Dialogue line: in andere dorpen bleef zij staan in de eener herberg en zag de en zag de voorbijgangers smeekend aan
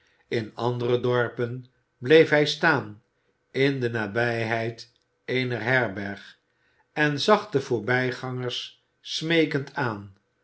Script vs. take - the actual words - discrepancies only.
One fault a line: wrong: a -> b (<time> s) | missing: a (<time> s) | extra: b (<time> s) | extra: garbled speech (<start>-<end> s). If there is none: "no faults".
wrong: zij -> hij (2.3 s)
extra: nabijheid (3.9 s)
missing: en zag de (7.6 s)